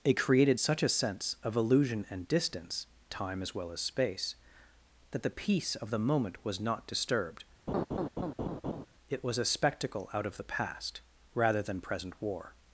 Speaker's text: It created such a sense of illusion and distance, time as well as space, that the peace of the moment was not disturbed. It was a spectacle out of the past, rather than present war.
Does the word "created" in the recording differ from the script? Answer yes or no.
no